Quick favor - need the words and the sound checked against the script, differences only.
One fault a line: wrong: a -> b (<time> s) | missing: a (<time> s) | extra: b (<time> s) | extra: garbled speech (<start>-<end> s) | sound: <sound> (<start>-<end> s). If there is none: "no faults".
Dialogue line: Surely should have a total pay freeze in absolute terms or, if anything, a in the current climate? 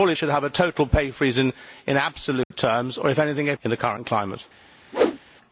sound: dropout (2.4-2.5 s)
sound: whoosh (4.9-5.2 s)